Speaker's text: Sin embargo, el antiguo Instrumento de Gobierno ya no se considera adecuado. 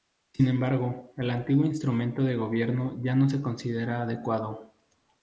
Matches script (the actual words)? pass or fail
pass